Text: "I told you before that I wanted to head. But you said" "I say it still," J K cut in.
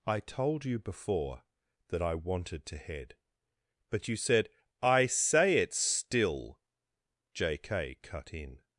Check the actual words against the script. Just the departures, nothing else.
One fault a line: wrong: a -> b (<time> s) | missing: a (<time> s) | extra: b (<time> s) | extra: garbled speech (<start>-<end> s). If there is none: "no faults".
no faults